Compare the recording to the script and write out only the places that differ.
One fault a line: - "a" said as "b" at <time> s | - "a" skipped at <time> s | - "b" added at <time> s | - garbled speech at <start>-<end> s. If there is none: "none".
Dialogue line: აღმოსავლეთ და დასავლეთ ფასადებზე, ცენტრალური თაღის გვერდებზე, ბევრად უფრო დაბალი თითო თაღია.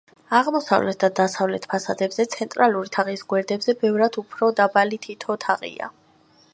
none